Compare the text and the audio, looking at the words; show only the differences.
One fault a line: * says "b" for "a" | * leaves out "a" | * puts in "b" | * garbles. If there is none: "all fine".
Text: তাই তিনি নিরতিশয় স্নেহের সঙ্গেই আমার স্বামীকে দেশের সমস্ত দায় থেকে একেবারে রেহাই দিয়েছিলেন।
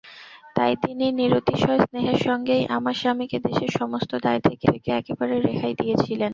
* puts in "থেকে"